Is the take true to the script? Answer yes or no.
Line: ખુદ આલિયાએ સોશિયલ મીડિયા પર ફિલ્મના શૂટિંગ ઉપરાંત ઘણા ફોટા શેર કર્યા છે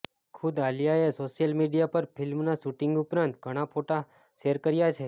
yes